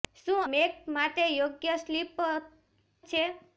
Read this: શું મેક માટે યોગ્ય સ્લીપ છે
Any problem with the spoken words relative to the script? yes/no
no